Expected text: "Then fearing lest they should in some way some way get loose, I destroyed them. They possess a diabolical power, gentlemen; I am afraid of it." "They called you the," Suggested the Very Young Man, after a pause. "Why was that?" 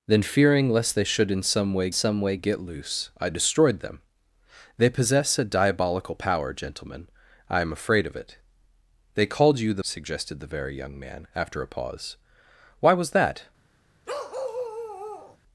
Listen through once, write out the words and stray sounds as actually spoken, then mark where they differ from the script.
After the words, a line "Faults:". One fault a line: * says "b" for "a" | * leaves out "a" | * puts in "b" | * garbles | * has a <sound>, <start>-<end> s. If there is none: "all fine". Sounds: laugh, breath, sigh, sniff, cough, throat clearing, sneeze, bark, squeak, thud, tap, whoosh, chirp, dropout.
"Then fearing lest they should in some way some way get loose, I destroyed them. They possess a diabolical power, gentlemen; I am afraid of it." "They called you the," Suggested the Very Young Man, after a pause. "Why was that?"
Faults:
* has a bark, 14.1-15.4 s